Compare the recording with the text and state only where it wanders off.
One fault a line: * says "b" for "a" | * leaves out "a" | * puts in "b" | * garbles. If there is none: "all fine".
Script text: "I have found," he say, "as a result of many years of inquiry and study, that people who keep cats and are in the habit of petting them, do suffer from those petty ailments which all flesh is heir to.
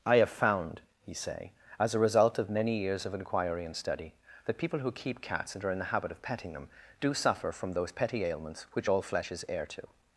all fine